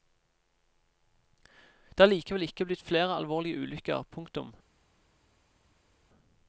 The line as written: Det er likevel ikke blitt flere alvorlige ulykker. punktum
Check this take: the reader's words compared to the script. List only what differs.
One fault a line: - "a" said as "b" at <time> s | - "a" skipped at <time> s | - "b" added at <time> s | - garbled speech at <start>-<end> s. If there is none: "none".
none